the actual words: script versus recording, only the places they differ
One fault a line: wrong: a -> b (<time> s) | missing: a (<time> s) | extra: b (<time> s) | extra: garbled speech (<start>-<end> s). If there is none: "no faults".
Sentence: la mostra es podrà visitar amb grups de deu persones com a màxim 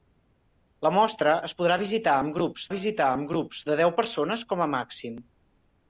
extra: visitar amb grups (2.7 s)